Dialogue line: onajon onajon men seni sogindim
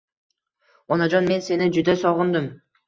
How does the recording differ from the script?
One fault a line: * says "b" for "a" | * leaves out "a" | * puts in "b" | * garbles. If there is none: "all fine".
* leaves out "onajon"
* puts in "juda"